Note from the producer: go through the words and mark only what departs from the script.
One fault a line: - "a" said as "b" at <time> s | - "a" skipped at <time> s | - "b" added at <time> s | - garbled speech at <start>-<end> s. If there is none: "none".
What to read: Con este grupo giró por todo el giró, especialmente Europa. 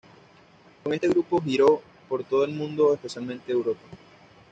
- "giró" said as "mundo" at 2.5 s